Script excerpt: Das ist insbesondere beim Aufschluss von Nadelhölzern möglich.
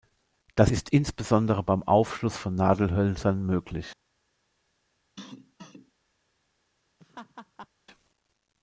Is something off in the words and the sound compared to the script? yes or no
yes